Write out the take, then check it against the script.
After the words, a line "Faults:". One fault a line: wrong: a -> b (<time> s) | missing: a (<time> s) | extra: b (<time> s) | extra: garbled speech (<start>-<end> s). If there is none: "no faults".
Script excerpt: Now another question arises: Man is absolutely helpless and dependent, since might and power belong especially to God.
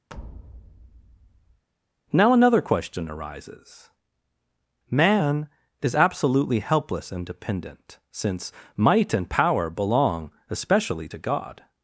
Now another question arises: Man is absolutely helpless and dependent, since might and power belong especially to God.
Faults:
no faults